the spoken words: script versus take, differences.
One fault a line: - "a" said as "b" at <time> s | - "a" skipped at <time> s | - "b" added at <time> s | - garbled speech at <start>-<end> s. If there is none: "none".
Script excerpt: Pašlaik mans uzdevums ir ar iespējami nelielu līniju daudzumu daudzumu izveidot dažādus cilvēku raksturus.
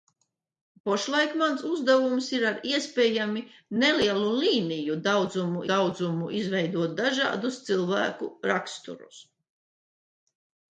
none